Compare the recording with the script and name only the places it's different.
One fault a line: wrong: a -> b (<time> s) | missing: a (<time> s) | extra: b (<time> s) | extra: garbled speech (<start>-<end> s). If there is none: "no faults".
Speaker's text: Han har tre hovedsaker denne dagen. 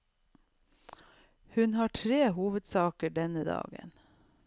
wrong: Han -> Hun (1.6 s)